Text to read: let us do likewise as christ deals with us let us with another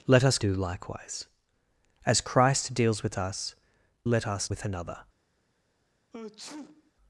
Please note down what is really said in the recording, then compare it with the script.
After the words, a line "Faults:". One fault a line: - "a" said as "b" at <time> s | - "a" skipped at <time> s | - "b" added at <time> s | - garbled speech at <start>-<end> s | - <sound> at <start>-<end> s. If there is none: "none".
let us do likewise as christ deals with us let us with another
Faults:
- sneeze at 6.1-6.9 s